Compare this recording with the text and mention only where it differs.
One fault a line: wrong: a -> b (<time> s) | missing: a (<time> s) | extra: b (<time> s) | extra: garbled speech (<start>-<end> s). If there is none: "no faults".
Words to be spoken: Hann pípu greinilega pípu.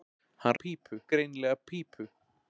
no faults